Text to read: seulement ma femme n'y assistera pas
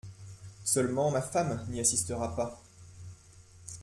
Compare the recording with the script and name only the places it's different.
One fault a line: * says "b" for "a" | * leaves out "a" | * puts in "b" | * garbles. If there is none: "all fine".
all fine